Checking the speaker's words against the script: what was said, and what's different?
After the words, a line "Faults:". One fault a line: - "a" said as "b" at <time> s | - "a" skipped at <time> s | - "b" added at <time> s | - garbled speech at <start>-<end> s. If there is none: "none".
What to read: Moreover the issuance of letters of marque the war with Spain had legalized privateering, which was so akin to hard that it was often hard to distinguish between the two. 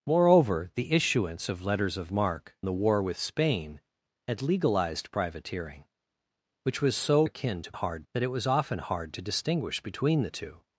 Moreover the issuance of letters of marque the war with Spain had legalized privateering, which was so akin to hard that it was often hard to distinguish between the two.
Faults:
none